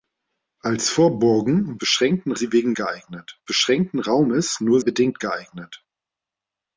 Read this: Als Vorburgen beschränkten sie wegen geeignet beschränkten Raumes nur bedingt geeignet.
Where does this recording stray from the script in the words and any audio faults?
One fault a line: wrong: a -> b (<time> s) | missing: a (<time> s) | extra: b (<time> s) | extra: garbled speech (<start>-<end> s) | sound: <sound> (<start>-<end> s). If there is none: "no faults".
no faults